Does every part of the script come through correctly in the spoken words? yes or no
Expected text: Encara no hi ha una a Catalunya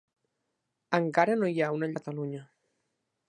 yes